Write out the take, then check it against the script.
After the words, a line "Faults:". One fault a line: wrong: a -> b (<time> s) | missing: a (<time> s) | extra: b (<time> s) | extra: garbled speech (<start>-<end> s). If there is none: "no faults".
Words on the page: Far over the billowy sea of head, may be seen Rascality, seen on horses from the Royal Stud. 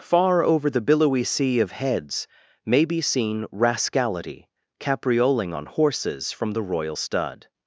Far over the billowy sea of heads, may be seen Rascality, caprioling on horses from the Royal Stud.
Faults:
wrong: head -> heads (1.7 s)
wrong: seen -> caprioling (4.8 s)